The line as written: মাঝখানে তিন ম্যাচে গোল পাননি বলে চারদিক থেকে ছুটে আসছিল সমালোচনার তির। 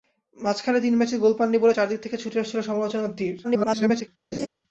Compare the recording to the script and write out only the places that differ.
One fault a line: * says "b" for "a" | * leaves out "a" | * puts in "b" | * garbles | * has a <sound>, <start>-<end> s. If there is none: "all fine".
* garbles
* has a laugh, 4.3-4.5 s